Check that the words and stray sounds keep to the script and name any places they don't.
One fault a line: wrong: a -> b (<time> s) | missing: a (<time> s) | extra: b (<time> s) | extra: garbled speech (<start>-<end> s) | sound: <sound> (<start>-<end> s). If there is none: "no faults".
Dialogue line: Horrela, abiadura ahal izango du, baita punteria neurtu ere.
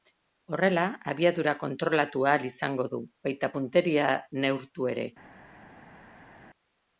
extra: kontrolatu (1.6 s)